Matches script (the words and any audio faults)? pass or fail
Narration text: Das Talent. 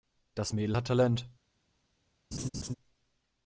fail